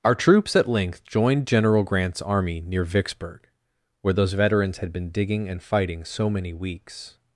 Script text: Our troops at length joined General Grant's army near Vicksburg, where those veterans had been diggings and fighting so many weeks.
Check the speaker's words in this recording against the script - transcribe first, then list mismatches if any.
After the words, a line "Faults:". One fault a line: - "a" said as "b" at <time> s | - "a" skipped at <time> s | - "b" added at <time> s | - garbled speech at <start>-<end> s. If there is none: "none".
Our troops at length joined General Grant's army near Vicksburg, where those veterans had been digging and fighting so many weeks.
Faults:
- "diggings" said as "digging" at 5.1 s